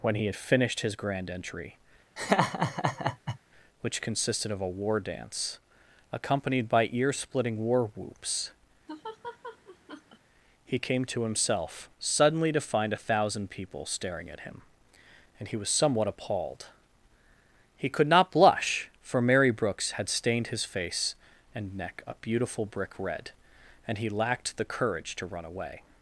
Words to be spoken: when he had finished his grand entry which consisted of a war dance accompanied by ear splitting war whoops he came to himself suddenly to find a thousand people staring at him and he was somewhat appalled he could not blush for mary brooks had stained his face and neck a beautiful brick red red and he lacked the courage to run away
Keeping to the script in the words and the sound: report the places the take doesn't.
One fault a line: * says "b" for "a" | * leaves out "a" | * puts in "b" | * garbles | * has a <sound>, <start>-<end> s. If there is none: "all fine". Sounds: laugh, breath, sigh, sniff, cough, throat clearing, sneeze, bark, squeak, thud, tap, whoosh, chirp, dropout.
* has a laugh, 2.2-3.4 s
* has a laugh, 8.9-10.2 s
* leaves out "red"